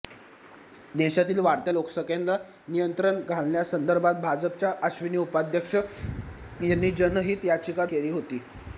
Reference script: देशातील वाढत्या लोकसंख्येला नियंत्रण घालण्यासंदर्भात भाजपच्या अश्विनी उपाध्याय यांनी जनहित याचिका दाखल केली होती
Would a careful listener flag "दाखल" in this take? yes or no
yes